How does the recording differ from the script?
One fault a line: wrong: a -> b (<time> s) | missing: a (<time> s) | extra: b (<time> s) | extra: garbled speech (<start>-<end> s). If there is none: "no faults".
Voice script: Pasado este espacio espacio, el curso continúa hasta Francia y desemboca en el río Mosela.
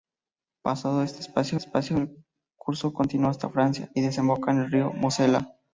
no faults